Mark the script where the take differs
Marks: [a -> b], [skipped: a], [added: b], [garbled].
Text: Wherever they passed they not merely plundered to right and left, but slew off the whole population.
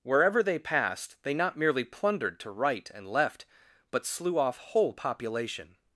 Wherever they passed they not merely plundered to right and left, but slew off [skipped: the] whole population.